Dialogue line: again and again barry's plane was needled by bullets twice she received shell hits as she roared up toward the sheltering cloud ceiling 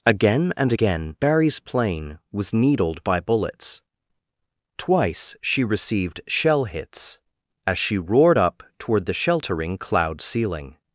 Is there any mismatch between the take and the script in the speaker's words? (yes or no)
no